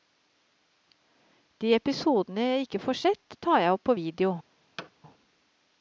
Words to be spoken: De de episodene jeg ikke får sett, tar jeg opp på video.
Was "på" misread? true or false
false